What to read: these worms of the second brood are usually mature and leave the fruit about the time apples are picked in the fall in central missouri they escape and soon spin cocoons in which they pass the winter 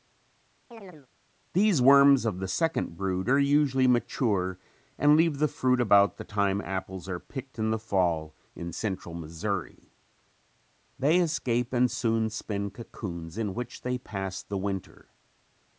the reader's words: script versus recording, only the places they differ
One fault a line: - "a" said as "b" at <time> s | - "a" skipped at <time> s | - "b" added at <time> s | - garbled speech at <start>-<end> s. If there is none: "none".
none